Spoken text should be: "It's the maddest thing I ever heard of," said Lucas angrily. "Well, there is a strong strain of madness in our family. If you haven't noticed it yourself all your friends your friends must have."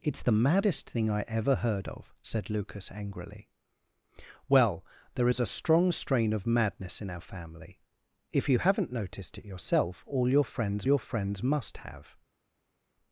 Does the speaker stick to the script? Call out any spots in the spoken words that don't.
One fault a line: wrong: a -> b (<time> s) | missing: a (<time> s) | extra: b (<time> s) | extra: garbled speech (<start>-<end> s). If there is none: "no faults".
no faults